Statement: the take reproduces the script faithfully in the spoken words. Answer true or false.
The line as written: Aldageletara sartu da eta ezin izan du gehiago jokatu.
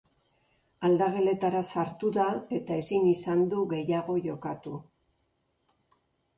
true